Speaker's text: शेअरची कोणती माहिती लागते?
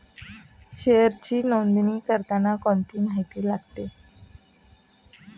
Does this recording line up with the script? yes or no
no